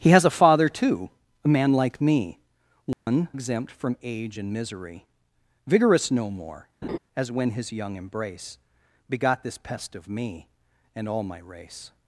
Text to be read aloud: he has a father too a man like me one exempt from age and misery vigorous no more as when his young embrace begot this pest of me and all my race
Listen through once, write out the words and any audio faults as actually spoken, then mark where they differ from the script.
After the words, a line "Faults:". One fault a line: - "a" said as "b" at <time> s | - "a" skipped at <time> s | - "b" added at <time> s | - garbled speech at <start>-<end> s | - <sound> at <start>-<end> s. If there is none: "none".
he has a father too a man like me one exempt from age and misery vigorous no more as when his young embrace begot this pest of me and all my race
Faults:
- dropout at 2.9-3.1 s
- laugh at 6.8-7.0 s